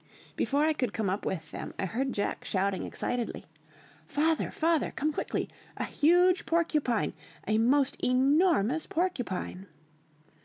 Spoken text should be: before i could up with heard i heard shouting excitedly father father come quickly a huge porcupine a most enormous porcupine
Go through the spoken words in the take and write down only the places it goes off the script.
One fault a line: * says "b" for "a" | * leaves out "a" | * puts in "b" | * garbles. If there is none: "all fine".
* puts in "come"
* says "them" for "heard"
* puts in "jack"